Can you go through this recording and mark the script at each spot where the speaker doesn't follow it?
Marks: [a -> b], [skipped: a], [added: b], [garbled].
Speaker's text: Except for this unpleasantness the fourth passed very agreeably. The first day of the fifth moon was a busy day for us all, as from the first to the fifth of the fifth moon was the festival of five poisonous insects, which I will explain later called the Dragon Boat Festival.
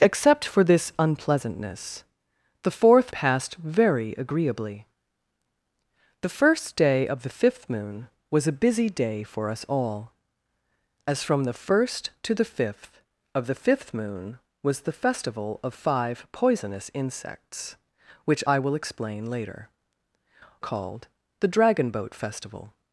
Except for this unpleasantness the fourth passed very agreeably. The first day of the fifth moon was a busy day for us all, as from the first to the fifth of the fifth moon was the festival of five poisonous insects, which I will explain later called the Dragon Boat Festival.